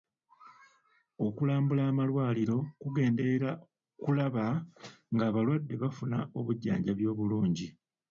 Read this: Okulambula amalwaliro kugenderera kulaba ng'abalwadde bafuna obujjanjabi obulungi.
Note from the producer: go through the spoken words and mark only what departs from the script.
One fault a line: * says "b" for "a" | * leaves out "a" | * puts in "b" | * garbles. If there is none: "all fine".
all fine